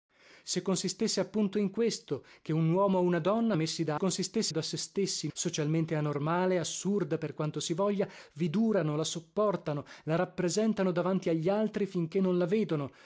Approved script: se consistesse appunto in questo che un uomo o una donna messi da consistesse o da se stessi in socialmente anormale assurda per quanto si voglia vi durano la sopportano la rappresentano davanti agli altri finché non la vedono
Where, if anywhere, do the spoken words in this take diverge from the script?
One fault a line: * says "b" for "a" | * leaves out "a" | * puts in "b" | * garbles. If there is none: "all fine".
all fine